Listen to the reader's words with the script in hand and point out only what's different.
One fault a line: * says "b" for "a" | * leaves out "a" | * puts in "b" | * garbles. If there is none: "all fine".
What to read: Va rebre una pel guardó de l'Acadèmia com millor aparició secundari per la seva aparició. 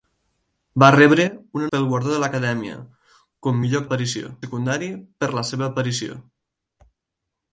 all fine